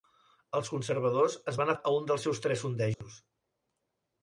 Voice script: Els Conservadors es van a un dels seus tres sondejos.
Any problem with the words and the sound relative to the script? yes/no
yes